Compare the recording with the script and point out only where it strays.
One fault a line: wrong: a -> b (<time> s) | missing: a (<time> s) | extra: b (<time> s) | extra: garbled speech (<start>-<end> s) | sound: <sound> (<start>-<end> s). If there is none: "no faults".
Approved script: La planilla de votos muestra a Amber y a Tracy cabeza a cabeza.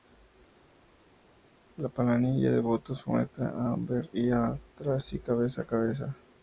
no faults